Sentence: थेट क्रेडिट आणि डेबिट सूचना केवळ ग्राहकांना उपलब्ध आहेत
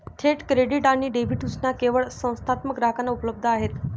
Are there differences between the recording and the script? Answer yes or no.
yes